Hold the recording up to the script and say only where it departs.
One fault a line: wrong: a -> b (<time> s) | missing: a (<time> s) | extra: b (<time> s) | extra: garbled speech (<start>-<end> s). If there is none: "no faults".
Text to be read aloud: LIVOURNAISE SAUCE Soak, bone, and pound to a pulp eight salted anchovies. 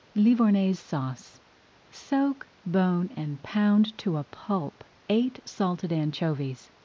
no faults